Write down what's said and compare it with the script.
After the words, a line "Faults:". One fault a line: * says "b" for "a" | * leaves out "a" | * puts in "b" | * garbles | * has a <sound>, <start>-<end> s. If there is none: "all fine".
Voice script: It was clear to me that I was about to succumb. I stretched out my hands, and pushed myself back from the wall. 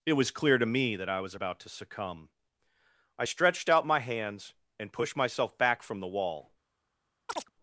It was clear to me that I was about to succumb. I stretched out my hands, and pushed myself back from the wall.
Faults:
* has a chirp, 7.3-7.5 s